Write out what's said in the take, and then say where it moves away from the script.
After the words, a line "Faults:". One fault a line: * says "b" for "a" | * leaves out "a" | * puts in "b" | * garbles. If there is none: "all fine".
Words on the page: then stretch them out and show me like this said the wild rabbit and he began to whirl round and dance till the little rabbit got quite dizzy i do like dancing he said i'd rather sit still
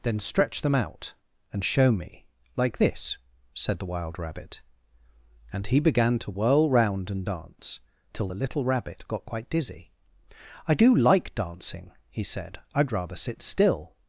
then stretch them out and show me like this said the wild rabbit and he began to whirl round and dance till the little rabbit got quite dizzy i do like dancing he said i'd rather sit still
Faults:
all fine